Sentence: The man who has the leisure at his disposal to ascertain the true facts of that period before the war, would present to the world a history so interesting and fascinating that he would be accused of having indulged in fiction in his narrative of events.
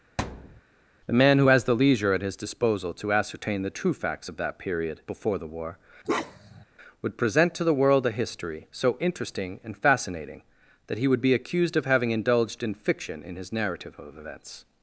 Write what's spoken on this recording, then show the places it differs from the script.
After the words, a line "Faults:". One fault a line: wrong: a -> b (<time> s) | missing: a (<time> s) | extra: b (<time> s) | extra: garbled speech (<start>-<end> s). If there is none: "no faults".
The man who has the leisure at his disposal to ascertain the true facts of that period before the war, would present to the world a history so interesting and fascinating that he would be accused of having indulged in fiction in his narrative of events.
Faults:
no faults